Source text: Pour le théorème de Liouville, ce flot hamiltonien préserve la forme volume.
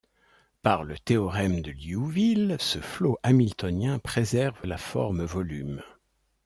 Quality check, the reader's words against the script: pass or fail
fail